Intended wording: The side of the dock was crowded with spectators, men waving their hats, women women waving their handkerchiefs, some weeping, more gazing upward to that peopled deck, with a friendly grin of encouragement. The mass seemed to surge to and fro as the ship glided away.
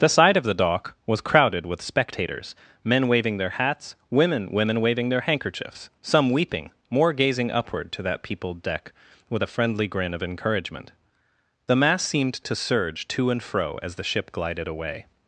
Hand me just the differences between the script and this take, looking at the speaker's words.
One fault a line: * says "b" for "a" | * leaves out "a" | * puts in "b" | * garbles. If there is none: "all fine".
all fine